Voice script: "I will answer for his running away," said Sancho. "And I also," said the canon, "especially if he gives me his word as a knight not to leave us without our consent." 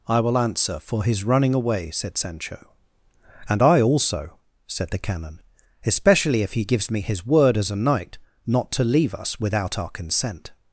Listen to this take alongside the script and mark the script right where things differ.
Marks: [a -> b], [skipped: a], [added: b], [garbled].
"I will answer for his running away," said Sancho. "And I also," said the canon, "especially if he gives me his word as a knight not to leave us without our consent."